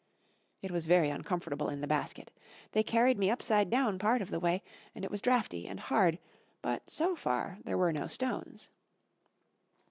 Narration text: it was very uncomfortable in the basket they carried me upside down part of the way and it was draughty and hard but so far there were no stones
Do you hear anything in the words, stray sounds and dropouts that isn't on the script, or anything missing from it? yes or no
no